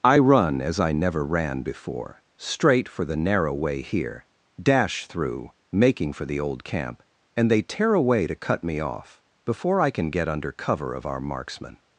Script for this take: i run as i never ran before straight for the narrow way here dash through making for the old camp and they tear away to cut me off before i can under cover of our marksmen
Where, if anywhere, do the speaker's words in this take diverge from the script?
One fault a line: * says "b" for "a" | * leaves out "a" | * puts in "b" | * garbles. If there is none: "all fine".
* puts in "get"